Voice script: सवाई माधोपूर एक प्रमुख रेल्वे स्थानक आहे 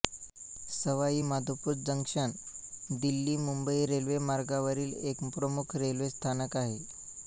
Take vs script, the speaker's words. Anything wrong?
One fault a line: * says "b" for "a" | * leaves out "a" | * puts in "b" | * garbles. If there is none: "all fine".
* puts in "जंक्शन दिल्लीमुंबई रेल्वेमार्गावरील"